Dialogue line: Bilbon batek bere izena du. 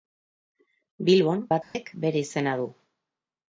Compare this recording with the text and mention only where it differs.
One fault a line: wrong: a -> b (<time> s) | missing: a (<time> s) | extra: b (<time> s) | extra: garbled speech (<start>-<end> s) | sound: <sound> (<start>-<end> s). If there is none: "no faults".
sound: dropout (1.6-1.7 s)